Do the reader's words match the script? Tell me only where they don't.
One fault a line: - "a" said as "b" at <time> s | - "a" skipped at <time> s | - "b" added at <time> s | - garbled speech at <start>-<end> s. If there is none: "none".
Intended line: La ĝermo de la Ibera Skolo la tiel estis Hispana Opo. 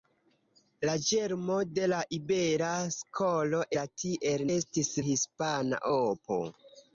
none